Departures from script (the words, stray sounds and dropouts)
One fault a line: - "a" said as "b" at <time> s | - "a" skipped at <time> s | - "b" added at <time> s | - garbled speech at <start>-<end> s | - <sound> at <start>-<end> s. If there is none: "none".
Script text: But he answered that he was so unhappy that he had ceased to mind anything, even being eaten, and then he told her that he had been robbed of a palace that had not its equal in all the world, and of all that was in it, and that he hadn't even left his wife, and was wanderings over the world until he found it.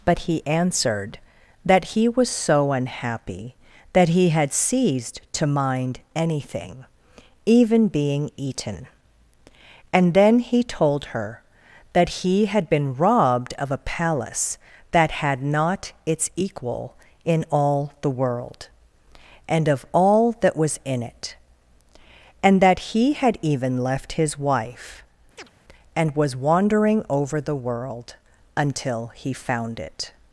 - "hadn't" said as "had" at 23.1 s
- chirp at 25.4-25.5 s
- "wanderings" said as "wandering" at 26.4 s